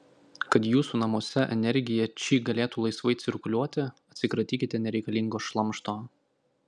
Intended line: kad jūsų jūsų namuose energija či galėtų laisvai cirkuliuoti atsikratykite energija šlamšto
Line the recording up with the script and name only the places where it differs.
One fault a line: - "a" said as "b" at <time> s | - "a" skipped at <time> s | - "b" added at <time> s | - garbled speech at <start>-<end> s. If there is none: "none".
- "jūsų" skipped at 1.0 s
- "energija" said as "nereikalingo" at 4.8 s